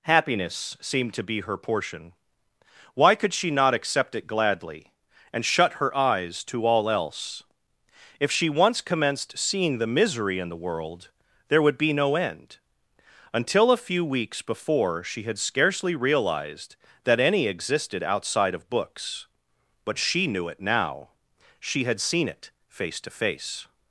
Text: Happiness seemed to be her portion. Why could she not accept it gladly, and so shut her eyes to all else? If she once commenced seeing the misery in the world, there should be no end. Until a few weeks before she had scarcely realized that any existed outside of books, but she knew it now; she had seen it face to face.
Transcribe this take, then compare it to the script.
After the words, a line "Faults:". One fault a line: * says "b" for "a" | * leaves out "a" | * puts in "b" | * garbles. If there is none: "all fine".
Happiness seemed to be her portion. Why could she not accept it gladly, and shut her eyes to all else? If she once commenced seeing the misery in the world, there would be no end. Until a few weeks before she had scarcely realized that any existed outside of books, but she knew it now; she had seen it face to face.
Faults:
* leaves out "so"
* says "would" for "should"